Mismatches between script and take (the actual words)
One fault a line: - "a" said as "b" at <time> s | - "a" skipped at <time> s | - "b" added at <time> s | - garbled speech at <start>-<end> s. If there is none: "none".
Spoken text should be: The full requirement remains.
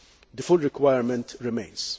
none